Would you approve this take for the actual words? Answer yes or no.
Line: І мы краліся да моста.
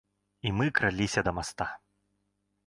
yes